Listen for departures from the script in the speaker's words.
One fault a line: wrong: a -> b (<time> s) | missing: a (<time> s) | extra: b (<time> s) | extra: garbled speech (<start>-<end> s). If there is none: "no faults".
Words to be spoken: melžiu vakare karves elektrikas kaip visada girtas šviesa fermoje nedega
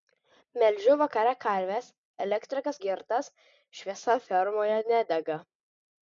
missing: kaip visada (2.8 s)